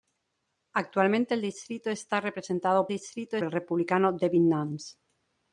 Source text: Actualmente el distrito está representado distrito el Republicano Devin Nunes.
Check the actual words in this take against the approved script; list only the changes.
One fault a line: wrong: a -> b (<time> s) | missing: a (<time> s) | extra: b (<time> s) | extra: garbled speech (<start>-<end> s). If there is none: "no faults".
no faults